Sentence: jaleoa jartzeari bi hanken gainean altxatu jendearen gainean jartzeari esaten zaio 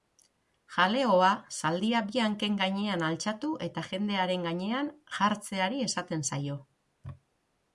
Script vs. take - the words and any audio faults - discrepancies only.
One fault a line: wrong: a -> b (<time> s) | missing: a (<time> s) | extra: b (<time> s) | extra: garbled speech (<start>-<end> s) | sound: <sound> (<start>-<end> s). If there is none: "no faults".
wrong: jartzeari -> zaldia (1.6 s)
extra: eta (3.7 s)